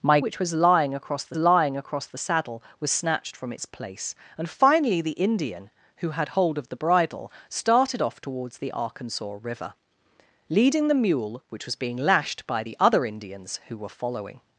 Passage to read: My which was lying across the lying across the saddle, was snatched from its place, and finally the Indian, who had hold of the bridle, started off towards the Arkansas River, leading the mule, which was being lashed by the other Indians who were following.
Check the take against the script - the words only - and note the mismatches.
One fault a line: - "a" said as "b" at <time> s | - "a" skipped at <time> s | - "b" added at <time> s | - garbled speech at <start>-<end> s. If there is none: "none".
none